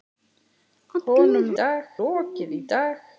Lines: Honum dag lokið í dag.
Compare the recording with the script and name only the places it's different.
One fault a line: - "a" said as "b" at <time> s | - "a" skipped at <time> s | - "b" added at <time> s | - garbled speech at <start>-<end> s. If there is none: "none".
none